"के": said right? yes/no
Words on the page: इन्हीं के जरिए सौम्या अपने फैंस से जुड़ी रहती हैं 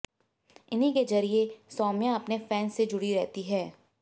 yes